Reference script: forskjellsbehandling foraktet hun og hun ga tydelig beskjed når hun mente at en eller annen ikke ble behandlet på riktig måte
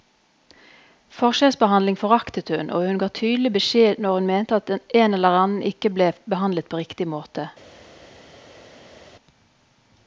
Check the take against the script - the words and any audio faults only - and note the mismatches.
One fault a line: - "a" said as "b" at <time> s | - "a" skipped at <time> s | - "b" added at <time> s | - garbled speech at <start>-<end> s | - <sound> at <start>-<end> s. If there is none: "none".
none